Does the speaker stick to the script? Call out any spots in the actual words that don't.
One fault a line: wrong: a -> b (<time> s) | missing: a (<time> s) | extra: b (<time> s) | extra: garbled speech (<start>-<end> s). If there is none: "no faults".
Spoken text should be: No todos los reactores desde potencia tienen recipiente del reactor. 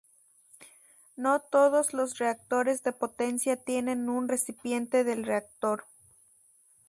wrong: desde -> de (2.8 s)
extra: un (4.1 s)